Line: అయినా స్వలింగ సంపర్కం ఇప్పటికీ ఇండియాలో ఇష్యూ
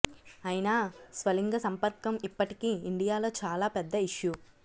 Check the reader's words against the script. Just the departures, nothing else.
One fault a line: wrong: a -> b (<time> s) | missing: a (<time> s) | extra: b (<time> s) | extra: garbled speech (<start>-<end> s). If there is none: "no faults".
extra: చాలా పెద్ద (3.4 s)